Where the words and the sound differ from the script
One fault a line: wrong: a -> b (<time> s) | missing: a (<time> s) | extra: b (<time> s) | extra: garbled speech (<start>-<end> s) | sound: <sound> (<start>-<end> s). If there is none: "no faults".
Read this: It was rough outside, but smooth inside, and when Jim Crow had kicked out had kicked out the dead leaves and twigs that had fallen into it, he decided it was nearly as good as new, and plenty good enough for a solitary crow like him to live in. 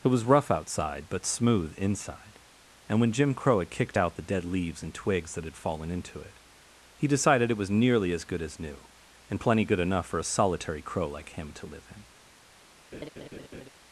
missing: had kicked out (4.1 s)
sound: laugh (12.9-13.7 s)